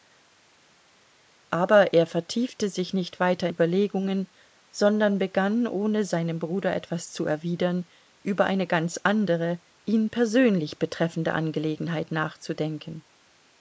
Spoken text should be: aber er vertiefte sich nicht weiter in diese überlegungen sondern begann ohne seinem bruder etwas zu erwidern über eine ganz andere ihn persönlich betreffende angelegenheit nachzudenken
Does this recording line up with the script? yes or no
no